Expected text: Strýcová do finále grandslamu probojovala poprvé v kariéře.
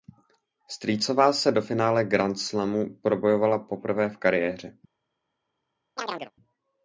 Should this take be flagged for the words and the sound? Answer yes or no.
yes